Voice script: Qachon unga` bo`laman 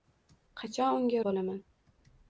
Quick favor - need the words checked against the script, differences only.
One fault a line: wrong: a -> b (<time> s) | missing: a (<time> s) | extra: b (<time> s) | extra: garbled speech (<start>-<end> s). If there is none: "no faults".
no faults